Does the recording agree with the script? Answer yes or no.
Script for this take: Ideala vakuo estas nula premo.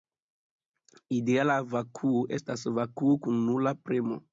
no